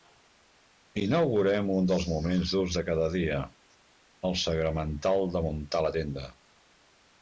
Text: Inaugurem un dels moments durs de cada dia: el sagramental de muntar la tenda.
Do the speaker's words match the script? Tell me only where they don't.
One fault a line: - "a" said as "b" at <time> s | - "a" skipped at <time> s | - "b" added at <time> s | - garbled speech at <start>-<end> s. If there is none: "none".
none